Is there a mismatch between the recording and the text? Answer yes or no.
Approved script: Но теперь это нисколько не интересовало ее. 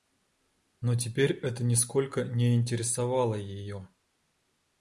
no